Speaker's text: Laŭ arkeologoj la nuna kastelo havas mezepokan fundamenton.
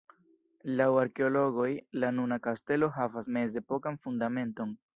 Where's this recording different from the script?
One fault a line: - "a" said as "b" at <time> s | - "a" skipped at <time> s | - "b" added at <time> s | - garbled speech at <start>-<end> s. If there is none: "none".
none